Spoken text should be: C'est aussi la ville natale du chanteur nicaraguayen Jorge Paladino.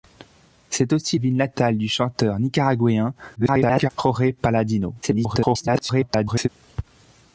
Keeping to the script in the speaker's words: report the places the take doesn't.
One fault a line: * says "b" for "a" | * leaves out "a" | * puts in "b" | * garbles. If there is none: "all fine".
* leaves out "la"
* garbles
* garbles